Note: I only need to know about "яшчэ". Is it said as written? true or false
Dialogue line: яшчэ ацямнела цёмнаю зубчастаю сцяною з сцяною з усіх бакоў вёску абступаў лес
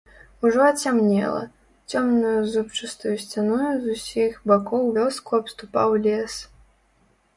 false